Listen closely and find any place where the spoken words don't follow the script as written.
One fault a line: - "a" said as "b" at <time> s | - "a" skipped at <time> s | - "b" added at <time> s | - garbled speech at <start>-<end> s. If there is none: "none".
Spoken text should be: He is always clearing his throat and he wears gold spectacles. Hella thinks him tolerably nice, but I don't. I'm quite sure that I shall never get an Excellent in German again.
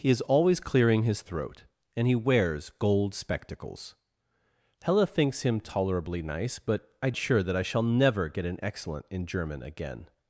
- "don't I'm quite" skipped at 7.1 s